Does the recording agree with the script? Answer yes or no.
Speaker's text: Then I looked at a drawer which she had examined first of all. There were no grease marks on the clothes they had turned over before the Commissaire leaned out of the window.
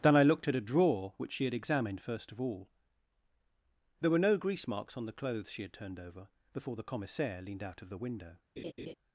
no